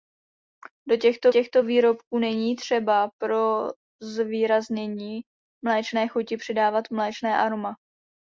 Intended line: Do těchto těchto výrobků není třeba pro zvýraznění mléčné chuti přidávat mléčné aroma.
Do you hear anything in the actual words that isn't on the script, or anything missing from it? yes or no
no